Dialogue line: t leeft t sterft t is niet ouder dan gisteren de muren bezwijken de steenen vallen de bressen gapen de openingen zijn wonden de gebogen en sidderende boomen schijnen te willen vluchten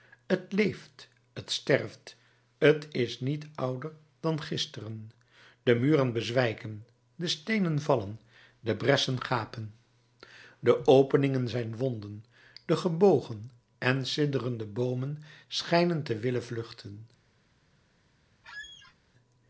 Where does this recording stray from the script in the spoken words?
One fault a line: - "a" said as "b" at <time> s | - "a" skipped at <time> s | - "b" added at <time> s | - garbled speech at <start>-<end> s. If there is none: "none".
none